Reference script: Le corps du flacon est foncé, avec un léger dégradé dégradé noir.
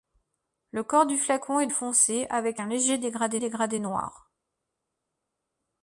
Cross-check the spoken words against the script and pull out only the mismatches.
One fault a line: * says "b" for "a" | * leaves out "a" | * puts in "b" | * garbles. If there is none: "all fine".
all fine